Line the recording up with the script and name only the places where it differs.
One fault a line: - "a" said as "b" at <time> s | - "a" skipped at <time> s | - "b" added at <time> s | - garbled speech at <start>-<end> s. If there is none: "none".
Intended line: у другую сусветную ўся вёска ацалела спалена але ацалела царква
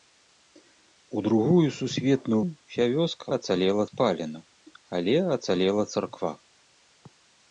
none